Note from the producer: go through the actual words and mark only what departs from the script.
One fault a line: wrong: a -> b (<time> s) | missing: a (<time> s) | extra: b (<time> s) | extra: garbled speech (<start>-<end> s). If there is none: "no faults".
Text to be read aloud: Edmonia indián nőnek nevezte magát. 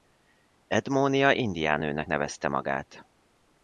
no faults